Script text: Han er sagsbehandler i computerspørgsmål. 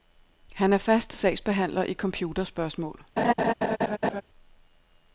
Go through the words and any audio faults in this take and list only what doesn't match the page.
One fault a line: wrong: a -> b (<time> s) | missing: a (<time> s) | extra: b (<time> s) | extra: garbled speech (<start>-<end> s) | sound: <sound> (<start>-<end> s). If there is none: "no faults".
extra: fast (0.8 s)
sound: laugh (3.2-4.2 s)